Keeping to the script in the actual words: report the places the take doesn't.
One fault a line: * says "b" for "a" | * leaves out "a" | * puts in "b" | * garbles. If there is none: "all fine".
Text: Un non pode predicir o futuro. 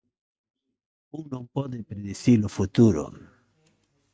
all fine